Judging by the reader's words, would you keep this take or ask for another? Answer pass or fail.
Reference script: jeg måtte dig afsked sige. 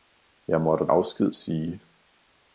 fail